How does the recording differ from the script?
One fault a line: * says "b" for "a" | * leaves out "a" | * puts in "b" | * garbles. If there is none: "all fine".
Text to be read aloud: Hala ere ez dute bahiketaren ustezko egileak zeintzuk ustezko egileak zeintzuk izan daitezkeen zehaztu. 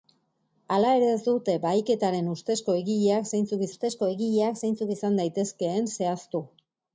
all fine